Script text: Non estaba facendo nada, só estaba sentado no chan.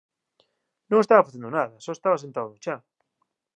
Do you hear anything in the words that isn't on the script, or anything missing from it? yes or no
no